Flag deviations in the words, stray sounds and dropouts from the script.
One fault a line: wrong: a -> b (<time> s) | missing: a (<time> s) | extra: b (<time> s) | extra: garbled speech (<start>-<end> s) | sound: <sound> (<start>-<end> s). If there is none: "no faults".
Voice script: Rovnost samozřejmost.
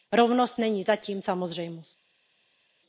extra: není zatím (0.6 s)